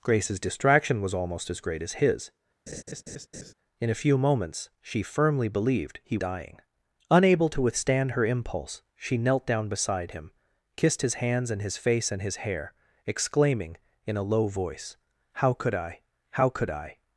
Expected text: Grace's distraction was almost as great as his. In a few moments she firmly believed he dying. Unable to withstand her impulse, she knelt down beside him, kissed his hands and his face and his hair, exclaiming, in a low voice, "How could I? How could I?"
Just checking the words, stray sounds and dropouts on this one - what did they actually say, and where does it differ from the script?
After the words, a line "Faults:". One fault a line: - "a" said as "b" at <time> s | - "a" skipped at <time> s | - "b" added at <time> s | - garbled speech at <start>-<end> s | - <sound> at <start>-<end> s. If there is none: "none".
Grace's distraction was almost as great as his. In a few moments she firmly believed he dying. Unable to withstand her impulse, she knelt down beside him, kissed his hands and his face and his hair, exclaiming, in a low voice, "How could I? How could I?"
Faults:
- laugh at 2.7-3.5 s